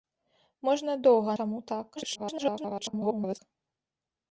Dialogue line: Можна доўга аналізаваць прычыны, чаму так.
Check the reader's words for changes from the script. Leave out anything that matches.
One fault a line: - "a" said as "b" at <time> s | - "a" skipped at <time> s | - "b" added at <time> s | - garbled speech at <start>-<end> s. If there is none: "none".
- "аналізаваць прычыны" skipped at 1.3 s
- garbled speech at 2.0-3.4 s